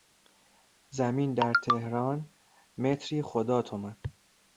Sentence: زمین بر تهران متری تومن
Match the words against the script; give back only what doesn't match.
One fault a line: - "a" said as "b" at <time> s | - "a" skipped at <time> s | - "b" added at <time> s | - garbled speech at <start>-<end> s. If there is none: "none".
- "بر" said as "در" at 1.3 s
- "خدا" added at 3.2 s